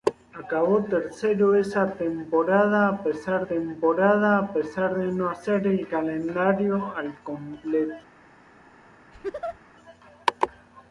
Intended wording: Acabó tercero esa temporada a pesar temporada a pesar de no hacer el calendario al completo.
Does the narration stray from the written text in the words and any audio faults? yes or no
yes